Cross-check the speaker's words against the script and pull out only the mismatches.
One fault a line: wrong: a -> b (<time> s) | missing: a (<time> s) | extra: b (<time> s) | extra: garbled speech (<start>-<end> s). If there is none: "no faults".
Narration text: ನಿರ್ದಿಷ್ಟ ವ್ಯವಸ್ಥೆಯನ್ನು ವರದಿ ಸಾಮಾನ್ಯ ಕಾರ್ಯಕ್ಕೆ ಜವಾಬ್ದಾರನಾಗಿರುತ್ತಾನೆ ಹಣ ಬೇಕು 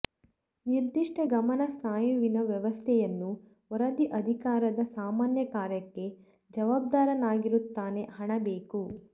extra: ಗಮನ ಸ್ನಾಯುವಿನ (1.3 s)
extra: ಅಧಿಕಾರದ (4.2 s)